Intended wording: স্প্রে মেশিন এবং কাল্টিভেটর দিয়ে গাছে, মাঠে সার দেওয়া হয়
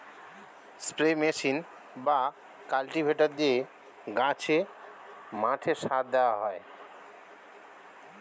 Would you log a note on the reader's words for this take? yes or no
yes